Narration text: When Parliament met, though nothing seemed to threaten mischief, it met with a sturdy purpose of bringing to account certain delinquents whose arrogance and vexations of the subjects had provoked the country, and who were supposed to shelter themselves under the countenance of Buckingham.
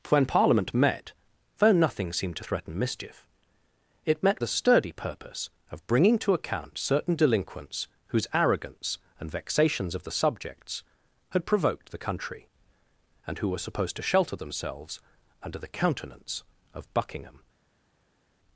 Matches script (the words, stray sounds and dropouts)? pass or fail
fail